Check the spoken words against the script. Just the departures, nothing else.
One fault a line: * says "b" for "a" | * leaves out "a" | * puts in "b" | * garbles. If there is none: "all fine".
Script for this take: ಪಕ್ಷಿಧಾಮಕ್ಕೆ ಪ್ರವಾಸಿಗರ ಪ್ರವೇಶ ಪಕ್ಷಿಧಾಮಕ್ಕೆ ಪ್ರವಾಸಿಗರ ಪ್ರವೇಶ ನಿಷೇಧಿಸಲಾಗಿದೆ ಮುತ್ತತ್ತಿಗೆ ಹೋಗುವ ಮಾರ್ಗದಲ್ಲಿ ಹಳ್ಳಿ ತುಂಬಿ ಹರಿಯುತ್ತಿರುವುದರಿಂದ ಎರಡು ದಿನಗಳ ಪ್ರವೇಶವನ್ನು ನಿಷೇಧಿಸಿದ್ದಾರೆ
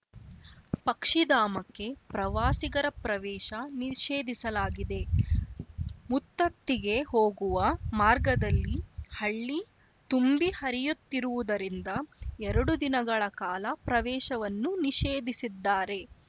* leaves out "ಪಕ್ಷಿಧಾಮಕ್ಕೆ ಪ್ರವಾಸಿಗರ ಪ್ರವೇಶ"
* puts in "ಕಾಲ"